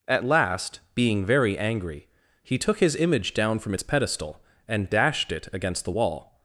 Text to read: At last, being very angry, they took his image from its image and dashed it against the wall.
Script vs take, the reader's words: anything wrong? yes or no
yes